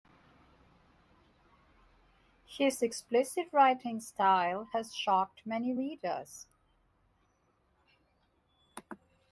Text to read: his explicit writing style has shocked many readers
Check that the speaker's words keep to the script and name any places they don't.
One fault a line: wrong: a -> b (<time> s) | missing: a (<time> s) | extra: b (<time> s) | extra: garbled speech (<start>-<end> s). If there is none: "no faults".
no faults